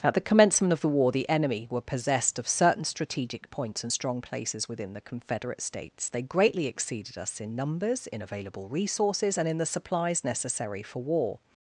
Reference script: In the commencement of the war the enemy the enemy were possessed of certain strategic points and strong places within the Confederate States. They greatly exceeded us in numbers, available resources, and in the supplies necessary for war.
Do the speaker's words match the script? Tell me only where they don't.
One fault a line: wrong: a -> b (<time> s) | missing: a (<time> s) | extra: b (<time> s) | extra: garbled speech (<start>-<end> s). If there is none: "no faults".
wrong: In -> At (0.0 s)
missing: the enemy (1.7 s)
extra: in (8.1 s)